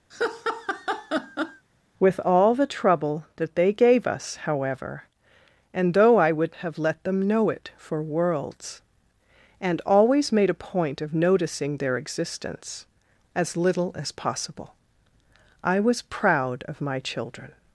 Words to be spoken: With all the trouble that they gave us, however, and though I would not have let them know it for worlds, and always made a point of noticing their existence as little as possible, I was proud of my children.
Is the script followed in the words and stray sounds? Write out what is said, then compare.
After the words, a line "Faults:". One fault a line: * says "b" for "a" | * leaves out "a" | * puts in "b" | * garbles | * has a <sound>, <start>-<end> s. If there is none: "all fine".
With all the trouble that they gave us, however, and though I would have let them know it for worlds, and always made a point of noticing their existence as little as possible, I was proud of my children.
Faults:
* has a laugh, 0.1-1.7 s
* leaves out "not"